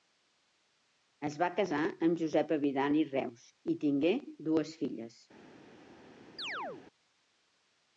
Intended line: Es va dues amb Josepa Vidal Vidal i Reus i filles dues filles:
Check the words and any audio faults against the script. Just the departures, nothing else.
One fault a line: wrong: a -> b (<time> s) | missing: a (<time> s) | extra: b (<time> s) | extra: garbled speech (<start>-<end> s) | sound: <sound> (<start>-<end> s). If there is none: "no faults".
wrong: dues -> casar (1.6 s)
missing: Vidal (3.0 s)
wrong: filles -> tingué (3.9 s)
sound: chirp (6.4-6.8 s)